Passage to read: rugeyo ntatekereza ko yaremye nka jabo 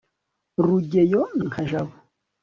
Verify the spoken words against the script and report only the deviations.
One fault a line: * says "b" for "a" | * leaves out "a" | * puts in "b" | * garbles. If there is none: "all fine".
* leaves out "ntatekereza ko yaremye"